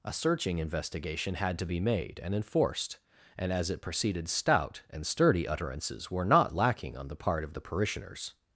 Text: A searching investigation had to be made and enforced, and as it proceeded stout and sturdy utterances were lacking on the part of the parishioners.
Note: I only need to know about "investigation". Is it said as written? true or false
true